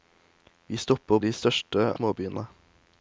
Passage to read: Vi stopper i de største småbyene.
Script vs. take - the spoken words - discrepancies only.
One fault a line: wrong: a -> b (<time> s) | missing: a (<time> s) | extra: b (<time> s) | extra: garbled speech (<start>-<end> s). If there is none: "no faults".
no faults